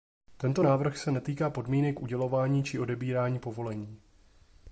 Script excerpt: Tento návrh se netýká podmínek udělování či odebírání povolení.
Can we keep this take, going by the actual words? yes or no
yes